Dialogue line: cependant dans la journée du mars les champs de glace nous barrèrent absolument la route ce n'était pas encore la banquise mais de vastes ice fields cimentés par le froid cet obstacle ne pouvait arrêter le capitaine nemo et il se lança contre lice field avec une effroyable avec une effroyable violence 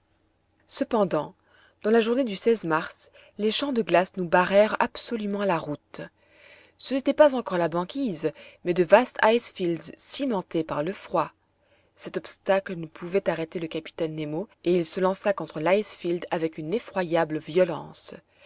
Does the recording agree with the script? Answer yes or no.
no